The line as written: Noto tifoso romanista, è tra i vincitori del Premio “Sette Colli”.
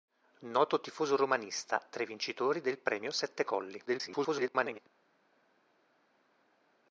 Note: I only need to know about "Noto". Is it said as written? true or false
true